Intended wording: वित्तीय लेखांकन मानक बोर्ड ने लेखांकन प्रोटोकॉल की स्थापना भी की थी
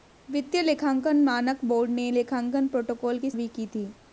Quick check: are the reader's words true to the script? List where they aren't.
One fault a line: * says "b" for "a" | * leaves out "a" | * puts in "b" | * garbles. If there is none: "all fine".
* leaves out "स्थापना"